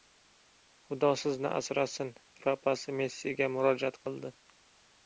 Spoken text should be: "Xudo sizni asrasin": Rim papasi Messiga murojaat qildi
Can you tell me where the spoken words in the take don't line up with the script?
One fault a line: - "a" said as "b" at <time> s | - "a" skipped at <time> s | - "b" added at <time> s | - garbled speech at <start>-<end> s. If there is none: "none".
- "Rim" skipped at 2.1 s